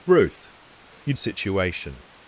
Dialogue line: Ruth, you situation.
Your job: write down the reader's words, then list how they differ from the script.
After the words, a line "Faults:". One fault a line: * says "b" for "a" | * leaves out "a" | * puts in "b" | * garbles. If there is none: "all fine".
Ruth, you situation.
Faults:
all fine